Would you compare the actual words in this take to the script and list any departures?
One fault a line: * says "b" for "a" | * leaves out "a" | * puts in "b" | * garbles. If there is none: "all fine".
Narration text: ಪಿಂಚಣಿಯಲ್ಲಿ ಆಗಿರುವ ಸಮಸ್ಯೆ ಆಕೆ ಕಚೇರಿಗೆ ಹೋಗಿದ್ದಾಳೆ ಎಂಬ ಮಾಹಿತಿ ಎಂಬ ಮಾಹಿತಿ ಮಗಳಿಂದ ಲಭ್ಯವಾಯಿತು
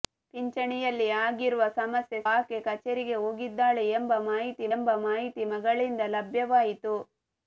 all fine